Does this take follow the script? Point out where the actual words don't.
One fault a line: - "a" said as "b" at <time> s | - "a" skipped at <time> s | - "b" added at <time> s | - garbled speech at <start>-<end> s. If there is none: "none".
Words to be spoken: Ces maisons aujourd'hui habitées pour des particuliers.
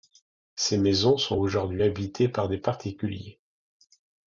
- "sont" added at 1.2 s
- "pour" said as "par" at 2.3 s